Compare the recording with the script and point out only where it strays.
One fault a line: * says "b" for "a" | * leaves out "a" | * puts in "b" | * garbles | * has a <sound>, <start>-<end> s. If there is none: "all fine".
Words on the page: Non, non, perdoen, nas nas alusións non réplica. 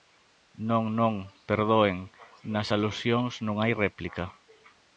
* leaves out "nas"
* puts in "hai"